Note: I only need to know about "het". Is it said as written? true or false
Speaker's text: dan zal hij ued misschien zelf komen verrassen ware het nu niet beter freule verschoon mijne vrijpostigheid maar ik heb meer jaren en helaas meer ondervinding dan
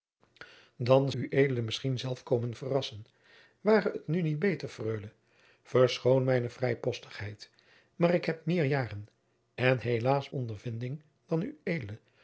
true